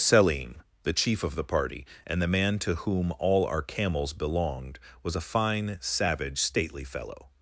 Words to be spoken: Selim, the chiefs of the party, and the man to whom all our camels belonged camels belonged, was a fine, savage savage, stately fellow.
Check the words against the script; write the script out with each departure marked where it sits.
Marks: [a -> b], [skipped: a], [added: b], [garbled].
Selim, the [chiefs -> chief] of the party, and the man to whom all our camels belonged [skipped: camels belonged,] was a fine, savage [skipped: savage,] stately fellow.